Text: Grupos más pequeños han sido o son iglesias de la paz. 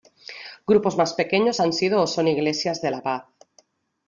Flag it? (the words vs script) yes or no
no